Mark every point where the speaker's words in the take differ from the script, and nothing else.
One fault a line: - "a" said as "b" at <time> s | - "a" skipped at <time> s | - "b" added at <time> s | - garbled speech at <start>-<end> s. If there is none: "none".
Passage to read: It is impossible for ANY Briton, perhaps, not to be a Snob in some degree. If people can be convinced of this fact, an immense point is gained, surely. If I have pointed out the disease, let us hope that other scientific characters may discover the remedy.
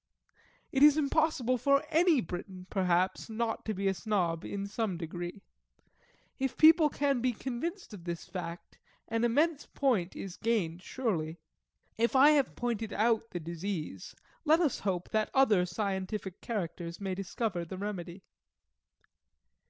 none